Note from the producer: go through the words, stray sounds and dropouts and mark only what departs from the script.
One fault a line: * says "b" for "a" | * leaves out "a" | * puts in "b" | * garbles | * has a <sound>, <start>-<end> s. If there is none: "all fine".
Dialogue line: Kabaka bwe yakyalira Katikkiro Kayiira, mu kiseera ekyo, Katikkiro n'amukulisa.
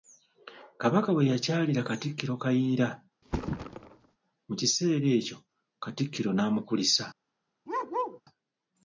* has a thud, 3.2-4.2 s
* has a bark, 7.7-8.2 s